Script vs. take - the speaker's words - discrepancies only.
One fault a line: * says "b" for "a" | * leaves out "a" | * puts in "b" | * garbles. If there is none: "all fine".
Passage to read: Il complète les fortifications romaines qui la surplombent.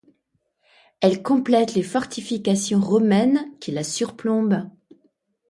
* says "Elle" for "Il"